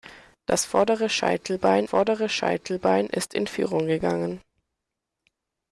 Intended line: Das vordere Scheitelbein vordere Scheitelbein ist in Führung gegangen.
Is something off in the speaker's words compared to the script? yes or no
no